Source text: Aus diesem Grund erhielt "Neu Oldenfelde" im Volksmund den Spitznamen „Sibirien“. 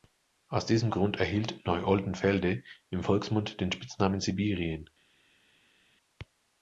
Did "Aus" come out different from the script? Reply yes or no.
no